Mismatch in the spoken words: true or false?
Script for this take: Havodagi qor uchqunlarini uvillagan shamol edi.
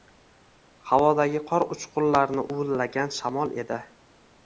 false